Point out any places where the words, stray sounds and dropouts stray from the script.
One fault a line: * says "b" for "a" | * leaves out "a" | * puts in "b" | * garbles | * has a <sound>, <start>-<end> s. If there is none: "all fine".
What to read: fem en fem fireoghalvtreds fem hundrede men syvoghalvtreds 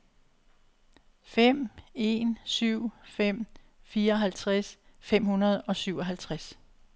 * puts in "syv"
* says "og" for "men"